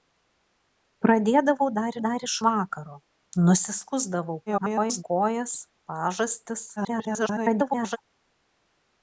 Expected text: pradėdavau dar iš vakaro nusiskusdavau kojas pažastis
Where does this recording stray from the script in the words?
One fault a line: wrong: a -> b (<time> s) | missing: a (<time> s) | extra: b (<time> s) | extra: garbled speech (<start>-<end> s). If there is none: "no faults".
extra: dar (2.0 s)
extra: garbled speech (4.5-5.0 s)
extra: garbled speech (6.8-8.0 s)